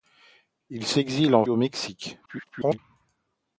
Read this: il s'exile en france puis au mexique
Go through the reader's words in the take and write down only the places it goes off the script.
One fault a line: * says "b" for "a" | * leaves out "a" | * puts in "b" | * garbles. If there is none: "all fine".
* leaves out "france puis"
* garbles